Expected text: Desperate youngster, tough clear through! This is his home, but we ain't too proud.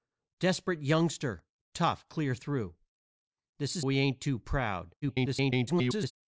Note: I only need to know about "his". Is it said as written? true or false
false